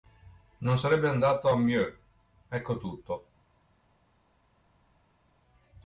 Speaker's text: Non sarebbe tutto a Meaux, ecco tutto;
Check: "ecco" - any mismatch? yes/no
no